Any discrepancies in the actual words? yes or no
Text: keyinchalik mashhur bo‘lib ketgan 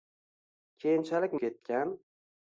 yes